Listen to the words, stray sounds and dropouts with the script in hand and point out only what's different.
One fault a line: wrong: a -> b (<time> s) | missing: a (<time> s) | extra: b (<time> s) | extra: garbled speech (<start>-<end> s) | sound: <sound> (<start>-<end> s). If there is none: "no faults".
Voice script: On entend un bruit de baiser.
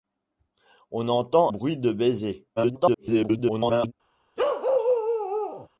missing: un (1.5 s)
extra: garbled speech (2.6-3.9 s)
sound: bark (4.4-5.7 s)